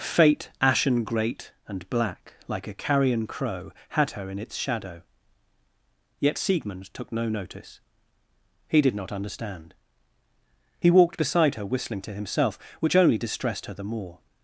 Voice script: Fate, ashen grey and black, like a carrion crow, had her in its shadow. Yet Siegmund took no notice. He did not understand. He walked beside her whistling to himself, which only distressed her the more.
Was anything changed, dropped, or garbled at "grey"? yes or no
yes